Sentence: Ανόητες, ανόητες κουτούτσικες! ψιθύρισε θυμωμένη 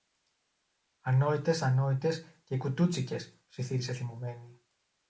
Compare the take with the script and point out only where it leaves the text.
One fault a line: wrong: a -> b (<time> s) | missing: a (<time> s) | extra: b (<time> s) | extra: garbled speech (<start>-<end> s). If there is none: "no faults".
extra: και (2.4 s)